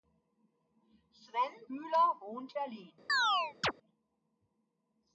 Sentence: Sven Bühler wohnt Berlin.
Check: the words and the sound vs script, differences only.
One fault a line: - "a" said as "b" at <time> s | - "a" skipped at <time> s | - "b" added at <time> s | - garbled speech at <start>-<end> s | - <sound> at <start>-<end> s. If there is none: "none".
- chirp at 3.1-3.7 s